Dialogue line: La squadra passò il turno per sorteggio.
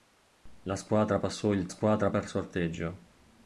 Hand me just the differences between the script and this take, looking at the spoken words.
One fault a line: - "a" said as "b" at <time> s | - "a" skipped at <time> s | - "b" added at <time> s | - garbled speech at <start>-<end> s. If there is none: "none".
- "turno" said as "squadra" at 1.7 s